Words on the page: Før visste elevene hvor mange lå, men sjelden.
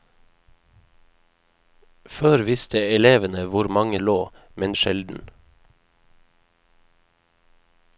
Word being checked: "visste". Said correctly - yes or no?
yes